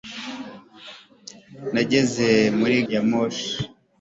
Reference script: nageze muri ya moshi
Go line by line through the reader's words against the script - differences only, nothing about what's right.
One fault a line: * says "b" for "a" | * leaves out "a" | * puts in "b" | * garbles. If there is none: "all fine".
all fine